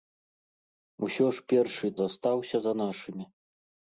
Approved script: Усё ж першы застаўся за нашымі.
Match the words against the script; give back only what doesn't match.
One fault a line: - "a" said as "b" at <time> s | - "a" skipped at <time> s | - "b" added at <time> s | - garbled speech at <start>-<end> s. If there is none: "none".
none